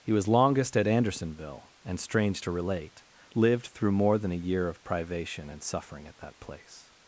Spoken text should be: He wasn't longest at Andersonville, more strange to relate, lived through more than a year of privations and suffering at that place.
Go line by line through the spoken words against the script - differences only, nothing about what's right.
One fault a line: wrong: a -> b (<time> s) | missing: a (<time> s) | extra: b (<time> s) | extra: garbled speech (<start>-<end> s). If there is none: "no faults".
wrong: wasn't -> was (0.1 s)
wrong: more -> and (1.9 s)
wrong: privations -> privation (4.8 s)